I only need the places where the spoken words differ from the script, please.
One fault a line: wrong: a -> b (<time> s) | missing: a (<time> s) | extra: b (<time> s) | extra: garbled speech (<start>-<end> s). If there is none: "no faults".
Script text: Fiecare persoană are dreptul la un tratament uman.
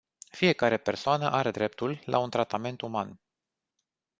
no faults